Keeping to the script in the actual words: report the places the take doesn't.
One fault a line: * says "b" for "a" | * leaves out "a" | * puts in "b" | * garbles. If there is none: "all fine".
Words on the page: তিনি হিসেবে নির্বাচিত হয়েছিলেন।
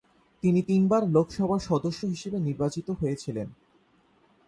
* puts in "তিনবার লোকসভার সদস্য"